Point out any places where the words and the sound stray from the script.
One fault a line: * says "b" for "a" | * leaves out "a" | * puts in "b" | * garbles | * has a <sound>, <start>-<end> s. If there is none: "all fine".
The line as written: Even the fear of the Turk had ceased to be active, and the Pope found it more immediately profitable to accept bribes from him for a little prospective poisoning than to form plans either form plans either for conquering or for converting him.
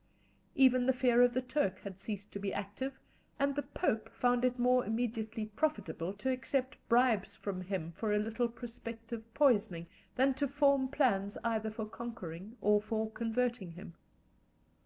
* leaves out "form plans either"